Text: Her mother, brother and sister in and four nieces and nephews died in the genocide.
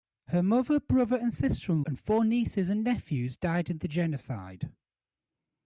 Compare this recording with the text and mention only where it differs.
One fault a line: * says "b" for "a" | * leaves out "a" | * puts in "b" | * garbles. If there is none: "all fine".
all fine